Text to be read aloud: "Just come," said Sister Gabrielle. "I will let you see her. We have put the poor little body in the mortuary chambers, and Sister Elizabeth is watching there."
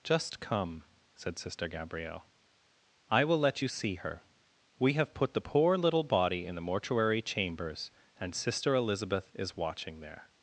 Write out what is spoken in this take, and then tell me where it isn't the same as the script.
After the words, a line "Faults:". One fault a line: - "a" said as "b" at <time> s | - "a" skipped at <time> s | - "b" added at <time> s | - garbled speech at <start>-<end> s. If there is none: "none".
"Just come," said Sister Gabrielle. "I will let you see her. We have put the poor little body in the mortuary chambers, and Sister Elizabeth is watching there."
Faults:
none